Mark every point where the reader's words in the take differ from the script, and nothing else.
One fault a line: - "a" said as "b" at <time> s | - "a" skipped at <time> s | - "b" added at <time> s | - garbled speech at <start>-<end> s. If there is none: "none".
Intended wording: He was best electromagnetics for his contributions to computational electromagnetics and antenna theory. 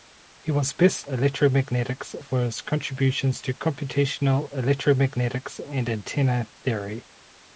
none